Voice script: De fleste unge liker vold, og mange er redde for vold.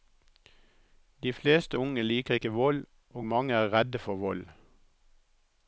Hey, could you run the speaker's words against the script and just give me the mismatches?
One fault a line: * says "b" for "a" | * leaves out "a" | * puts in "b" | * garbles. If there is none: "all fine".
* puts in "ikke"